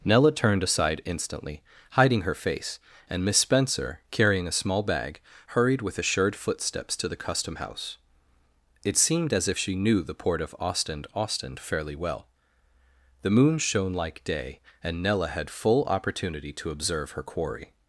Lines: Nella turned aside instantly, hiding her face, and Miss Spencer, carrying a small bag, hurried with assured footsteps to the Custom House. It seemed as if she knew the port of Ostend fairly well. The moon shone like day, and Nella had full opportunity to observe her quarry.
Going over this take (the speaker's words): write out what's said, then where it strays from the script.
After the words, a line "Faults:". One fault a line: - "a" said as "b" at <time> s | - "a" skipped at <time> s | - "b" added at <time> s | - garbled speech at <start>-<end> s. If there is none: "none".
Nella turned aside instantly, hiding her face, and Miss Spencer, carrying a small bag, hurried with assured footsteps to the Custom House. It seemed as if she knew the port of Ostend Ostend fairly well. The moon shone like day, and Nella had full opportunity to observe her quarry.
Faults:
- "Ostend" added at 11.1 s